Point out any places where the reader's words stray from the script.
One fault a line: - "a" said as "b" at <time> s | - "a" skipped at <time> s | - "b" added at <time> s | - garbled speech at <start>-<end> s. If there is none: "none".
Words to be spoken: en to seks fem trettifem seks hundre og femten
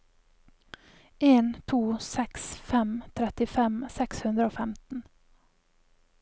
none